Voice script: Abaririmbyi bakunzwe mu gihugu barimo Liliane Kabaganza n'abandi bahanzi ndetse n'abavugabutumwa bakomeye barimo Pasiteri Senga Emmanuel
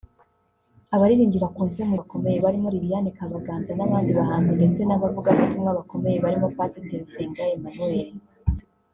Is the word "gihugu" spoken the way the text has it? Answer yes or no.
no